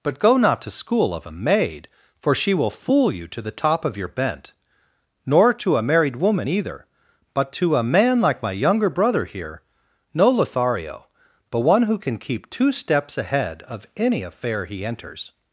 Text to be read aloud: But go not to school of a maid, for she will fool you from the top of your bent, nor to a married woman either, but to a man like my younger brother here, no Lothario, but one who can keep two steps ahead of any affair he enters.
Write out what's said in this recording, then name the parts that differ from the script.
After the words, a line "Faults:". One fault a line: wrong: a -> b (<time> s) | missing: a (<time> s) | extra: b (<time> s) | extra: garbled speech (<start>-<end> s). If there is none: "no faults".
But go not to school of a maid, for she will fool you to the top of your bent, nor to a married woman either, but to a man like my younger brother here, no Lothario, but one who can keep two steps ahead of any affair he enters.
Faults:
wrong: from -> to (3.3 s)